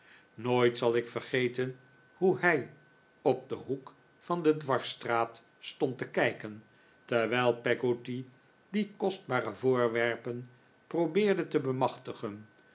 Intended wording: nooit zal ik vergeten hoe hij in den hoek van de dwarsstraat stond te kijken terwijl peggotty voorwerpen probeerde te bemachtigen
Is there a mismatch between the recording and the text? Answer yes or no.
yes